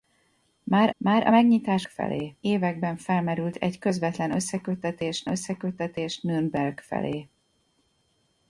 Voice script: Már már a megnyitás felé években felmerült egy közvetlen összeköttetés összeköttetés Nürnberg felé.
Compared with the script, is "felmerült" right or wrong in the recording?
right